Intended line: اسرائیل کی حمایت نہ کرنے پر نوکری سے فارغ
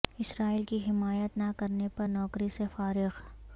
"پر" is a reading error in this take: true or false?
false